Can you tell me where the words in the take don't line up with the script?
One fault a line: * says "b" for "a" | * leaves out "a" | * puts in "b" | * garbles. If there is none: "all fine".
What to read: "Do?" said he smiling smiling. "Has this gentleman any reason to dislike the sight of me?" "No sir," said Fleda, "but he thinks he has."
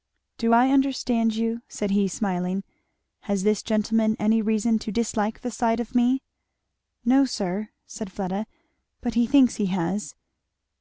* puts in "I understand you"
* leaves out "smiling"